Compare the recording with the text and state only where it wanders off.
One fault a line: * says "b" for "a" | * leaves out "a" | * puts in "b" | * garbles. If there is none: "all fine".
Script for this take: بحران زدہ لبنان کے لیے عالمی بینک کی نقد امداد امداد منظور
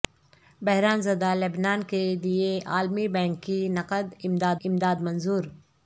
all fine